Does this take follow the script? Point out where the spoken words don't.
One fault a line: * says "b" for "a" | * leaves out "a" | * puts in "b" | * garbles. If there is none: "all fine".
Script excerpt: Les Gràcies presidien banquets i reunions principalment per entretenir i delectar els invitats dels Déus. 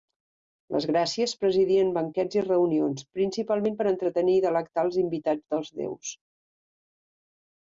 all fine